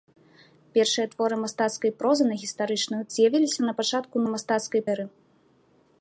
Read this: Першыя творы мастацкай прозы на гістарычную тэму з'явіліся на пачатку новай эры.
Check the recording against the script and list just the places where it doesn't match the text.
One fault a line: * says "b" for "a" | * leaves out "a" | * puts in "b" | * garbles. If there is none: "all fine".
* leaves out "тэму"
* says "мастацкай" for "новай"